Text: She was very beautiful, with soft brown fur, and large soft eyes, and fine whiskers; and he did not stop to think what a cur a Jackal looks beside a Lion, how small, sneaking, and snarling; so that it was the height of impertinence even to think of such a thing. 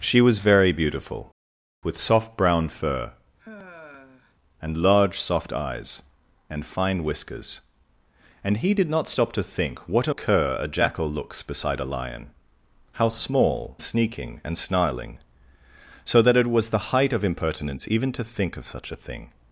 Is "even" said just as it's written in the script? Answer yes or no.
yes